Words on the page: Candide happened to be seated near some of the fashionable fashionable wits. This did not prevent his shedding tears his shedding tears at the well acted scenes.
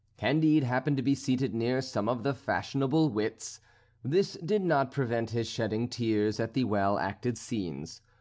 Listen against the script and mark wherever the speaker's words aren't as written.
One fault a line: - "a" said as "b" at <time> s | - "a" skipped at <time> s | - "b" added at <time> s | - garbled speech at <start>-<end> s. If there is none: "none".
- "fashionable" skipped at 3.1 s
- "his shedding tears" skipped at 6.4 s